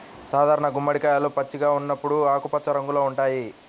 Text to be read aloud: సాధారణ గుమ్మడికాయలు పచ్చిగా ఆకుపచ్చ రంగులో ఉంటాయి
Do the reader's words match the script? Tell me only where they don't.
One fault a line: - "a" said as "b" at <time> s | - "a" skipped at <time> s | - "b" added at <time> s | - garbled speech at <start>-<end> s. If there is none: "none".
- "ఉన్నప్పుడు" added at 1.7 s